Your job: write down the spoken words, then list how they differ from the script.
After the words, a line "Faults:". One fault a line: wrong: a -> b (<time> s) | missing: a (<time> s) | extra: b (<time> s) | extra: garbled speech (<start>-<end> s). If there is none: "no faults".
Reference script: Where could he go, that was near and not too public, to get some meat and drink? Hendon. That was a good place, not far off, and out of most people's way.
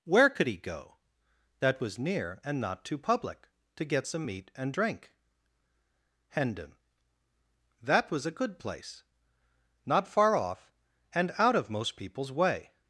Where could he go, that was near and not too public, to get some meat and drink? Hendon. That was a good place, not far off, and out of most people's way.
Faults:
no faults